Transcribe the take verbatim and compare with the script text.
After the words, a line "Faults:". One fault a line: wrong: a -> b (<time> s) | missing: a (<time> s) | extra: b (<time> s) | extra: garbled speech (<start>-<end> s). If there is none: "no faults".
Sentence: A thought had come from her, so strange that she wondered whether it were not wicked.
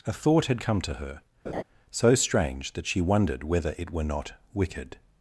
A thought had come to her, so strange that she wondered whether it were not wicked.
Faults:
wrong: from -> to (0.8 s)